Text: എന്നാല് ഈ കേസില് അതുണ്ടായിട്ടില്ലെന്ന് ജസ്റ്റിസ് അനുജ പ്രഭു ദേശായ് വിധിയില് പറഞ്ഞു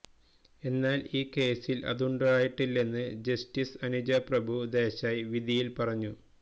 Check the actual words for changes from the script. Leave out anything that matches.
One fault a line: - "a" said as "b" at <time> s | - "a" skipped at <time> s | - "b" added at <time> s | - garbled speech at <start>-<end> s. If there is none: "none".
none